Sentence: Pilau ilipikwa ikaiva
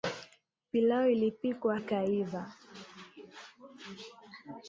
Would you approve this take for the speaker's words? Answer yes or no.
yes